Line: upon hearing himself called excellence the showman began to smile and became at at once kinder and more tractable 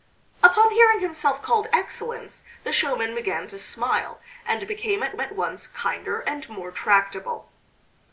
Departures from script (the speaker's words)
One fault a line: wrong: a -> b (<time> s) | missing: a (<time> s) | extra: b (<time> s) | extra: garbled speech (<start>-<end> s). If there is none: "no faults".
no faults